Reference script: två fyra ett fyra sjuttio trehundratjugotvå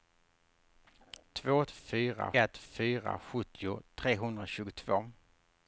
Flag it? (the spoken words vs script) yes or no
no